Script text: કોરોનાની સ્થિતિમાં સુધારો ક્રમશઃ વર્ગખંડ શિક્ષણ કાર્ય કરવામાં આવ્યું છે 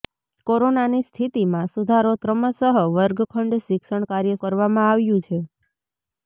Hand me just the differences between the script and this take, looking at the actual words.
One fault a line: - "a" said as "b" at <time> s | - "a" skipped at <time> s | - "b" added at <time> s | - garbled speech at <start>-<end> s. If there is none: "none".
none